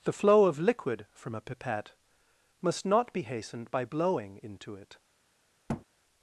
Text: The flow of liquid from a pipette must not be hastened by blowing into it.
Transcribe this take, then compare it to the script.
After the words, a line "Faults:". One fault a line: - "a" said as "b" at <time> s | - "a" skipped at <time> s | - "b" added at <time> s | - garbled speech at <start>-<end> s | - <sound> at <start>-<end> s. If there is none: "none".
The flow of liquid from a pipette must not be hastened by blowing into it.
Faults:
- thud at 5.7-5.9 s